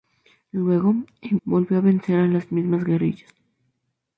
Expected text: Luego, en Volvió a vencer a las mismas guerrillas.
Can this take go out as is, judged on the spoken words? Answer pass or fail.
pass